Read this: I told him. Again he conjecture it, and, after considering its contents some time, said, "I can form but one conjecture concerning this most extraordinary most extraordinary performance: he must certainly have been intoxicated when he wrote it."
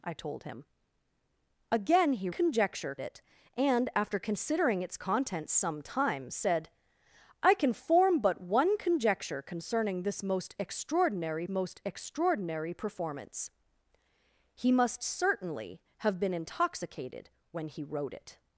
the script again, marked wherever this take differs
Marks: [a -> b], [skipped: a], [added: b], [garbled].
I told him. Again he conjecture it, and, after considering its contents some time, said, "I can form but one conjecture concerning this most extraordinary most extraordinary performance: he must certainly have been intoxicated when he wrote it."